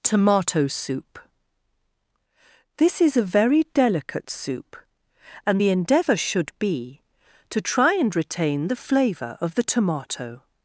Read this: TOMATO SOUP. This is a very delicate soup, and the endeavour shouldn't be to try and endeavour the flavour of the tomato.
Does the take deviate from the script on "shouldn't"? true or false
true